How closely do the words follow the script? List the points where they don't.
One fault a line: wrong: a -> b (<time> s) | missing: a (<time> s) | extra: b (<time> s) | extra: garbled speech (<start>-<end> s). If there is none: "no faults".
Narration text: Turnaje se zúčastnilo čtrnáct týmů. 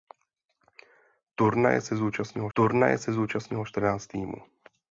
extra: turnaje se zúčastnilo (2.5 s)